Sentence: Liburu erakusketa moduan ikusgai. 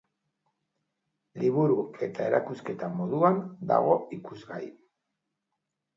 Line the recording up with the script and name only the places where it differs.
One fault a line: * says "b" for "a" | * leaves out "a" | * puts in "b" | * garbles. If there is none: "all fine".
* puts in "eta"
* puts in "dago"